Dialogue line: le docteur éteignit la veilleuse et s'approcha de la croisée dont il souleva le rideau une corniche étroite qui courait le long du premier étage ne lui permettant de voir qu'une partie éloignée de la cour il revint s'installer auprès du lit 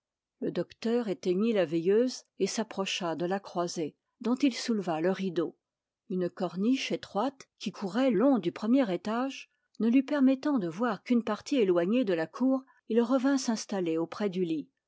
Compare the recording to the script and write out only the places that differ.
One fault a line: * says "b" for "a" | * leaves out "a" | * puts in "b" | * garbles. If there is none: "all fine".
* leaves out "le"